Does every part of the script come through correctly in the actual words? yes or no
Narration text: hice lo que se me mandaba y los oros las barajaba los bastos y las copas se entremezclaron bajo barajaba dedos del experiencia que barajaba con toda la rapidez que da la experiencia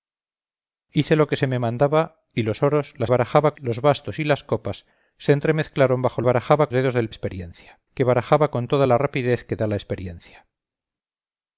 yes